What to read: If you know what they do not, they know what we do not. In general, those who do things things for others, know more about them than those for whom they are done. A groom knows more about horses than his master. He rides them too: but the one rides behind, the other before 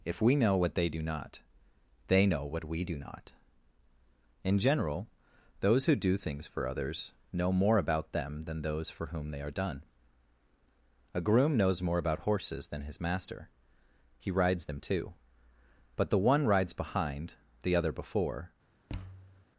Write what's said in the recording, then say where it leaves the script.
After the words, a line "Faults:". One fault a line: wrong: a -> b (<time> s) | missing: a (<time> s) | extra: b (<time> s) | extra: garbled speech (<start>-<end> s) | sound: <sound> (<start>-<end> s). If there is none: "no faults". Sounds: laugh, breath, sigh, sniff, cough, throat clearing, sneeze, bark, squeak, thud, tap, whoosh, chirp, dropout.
If we know what they do not, they know what we do not. In general, those who do things for others, know more about them than those for whom they are done. A groom knows more about horses than his master. He rides them too: but the one rides behind, the other before
Faults:
wrong: you -> we (0.2 s)
missing: things (6.5 s)
sound: thud (18.9-19.5 s)